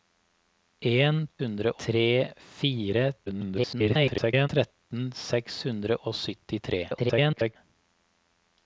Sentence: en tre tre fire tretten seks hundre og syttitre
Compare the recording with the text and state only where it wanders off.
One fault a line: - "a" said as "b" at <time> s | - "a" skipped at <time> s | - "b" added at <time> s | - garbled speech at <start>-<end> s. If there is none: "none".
- "tre" said as "hundre" at 1.4 s
- garbled speech at 3.3-4.5 s
- garbled speech at 6.9-7.6 s